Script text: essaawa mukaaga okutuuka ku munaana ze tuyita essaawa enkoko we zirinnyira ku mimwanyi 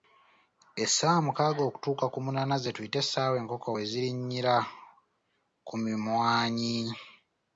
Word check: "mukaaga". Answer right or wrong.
right